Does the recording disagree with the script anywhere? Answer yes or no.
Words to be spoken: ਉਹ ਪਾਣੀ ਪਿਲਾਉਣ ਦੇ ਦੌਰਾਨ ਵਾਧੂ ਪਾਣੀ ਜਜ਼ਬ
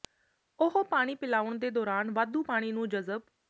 yes